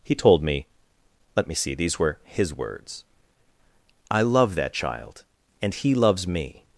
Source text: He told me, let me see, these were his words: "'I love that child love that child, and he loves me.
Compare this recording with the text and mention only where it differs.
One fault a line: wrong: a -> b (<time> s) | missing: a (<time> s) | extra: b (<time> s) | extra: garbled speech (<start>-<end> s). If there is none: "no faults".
missing: love that child (5.2 s)